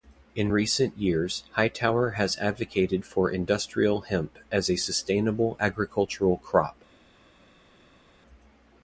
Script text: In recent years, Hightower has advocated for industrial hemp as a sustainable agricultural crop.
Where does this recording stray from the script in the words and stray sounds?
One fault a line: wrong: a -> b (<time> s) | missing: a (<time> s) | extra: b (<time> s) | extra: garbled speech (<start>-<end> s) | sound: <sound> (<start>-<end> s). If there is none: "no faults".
no faults